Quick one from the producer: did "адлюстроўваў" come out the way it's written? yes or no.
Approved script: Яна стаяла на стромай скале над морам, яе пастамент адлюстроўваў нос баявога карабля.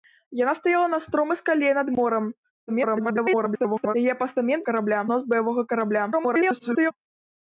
no